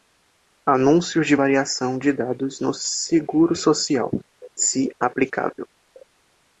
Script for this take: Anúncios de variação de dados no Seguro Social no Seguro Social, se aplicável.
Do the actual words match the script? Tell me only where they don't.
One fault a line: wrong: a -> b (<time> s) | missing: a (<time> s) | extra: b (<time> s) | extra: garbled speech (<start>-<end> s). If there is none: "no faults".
missing: no Seguro Social (4.1 s)